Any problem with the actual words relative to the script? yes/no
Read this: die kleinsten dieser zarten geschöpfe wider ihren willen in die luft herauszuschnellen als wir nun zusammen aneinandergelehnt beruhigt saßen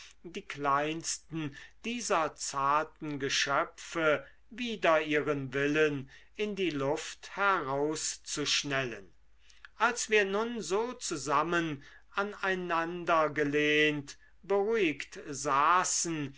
yes